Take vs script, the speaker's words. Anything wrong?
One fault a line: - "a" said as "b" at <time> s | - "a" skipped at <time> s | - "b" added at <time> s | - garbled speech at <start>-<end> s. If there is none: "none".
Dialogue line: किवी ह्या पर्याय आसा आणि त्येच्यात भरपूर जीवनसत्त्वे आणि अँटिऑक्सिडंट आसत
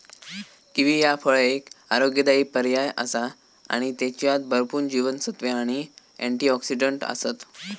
- "फळ एक आरोग्यदायी" added at 1.1 s